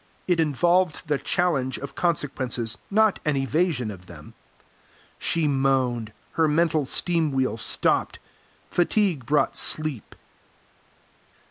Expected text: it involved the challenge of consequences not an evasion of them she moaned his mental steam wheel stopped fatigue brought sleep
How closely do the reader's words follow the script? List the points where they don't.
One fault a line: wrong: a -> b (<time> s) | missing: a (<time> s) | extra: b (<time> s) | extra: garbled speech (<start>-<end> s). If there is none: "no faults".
wrong: his -> her (6.3 s)